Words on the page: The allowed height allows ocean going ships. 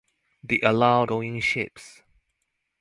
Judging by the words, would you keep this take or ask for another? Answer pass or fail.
fail